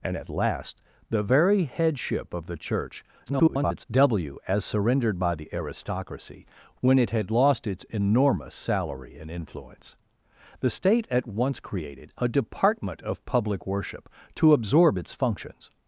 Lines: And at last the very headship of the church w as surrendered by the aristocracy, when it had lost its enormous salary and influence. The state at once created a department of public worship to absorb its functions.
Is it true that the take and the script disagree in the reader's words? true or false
true